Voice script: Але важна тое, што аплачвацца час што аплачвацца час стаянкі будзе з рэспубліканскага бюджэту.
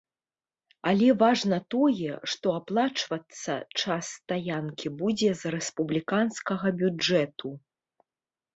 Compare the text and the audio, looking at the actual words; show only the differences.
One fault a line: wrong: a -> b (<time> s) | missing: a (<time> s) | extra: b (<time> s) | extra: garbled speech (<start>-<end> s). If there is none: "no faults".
missing: што аплачвацца час (4.0 s)